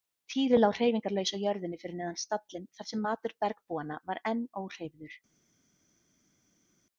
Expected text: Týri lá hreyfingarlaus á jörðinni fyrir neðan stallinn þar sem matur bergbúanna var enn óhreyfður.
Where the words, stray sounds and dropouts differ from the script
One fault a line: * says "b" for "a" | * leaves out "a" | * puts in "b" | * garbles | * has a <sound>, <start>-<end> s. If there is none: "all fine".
all fine